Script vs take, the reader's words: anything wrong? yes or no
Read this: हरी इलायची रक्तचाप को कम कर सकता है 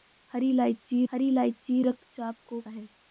yes